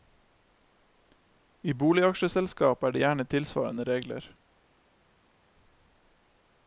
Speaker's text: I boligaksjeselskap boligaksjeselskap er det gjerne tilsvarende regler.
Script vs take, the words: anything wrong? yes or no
yes